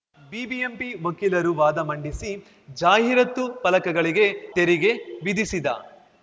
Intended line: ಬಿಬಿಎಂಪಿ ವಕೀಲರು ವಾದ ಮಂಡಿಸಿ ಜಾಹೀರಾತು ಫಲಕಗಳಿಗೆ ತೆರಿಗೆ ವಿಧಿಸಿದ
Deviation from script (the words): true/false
false